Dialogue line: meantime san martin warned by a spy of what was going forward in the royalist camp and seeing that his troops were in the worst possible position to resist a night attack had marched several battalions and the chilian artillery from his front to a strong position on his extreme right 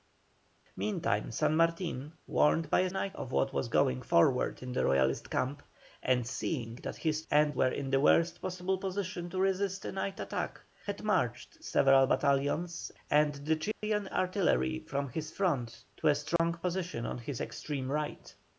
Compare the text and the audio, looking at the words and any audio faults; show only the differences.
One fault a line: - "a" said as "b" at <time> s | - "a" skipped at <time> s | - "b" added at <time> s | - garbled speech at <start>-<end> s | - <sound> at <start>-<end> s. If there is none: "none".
- "spy" said as "night" at 2.9 s
- "troops" said as "and" at 7.3 s
- dropout at 13.7-13.8 s
- dropout at 16.4-16.4 s